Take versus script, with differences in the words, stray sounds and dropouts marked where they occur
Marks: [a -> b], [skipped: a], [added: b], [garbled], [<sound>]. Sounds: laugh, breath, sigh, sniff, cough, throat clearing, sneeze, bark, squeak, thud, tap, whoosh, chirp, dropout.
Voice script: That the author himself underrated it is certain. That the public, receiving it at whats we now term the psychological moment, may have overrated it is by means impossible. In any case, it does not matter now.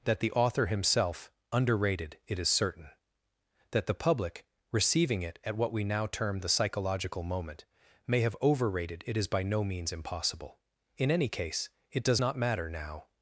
That the author himself underrated it is certain. That the public, receiving it at [whats -> what] we now term the psychological moment, may have overrated it is by [added: no] means impossible. In any case, it does not matter now.